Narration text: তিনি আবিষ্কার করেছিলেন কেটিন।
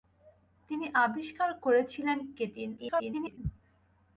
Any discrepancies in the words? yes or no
yes